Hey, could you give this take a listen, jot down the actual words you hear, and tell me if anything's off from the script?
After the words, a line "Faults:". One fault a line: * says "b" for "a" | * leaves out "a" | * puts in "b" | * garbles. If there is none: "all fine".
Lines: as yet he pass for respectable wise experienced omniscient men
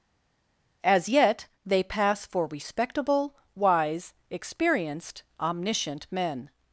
as yet they pass for respectable wise experienced omniscient men
Faults:
* says "they" for "he"